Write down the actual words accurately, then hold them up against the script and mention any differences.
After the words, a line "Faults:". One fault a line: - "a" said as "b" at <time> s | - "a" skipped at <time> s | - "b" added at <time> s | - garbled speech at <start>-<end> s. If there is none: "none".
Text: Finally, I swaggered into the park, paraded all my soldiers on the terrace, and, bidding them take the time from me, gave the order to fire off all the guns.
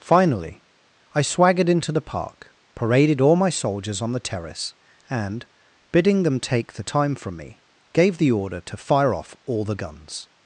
Finally, I swaggered into the park, paraded all my soldiers on the terrace, and, bidding them take the time from me, gave the order to fire off all the guns.
Faults:
none